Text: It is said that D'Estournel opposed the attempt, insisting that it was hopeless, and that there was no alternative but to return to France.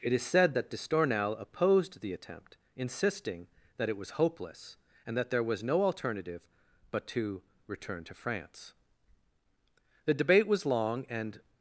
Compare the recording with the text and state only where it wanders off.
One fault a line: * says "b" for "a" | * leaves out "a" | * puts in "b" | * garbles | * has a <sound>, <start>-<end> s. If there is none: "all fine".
* puts in "The debate was long and"